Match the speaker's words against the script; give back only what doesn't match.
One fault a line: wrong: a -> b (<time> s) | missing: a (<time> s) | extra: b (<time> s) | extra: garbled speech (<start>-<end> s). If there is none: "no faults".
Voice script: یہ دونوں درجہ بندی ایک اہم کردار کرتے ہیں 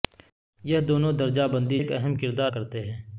no faults